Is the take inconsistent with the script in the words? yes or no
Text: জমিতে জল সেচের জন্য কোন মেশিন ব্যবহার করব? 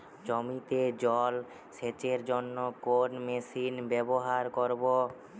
no